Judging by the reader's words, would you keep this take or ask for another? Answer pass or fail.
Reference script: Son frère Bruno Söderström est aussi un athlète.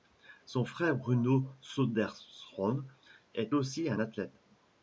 pass